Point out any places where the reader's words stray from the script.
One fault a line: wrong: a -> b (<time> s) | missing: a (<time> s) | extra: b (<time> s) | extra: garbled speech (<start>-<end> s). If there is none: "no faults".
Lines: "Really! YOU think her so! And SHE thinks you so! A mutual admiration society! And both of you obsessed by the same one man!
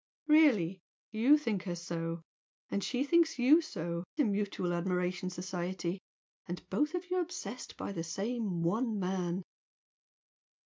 no faults